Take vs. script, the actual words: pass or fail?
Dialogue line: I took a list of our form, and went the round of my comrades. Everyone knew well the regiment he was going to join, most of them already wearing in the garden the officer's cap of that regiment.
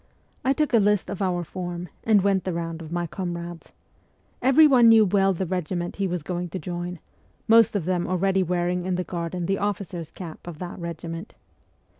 pass